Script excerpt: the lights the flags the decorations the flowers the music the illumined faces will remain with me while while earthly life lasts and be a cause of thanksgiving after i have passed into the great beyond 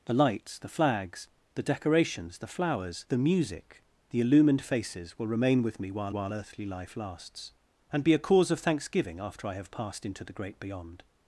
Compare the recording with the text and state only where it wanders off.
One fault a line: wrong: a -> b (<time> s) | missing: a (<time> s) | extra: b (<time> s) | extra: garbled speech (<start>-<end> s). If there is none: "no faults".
no faults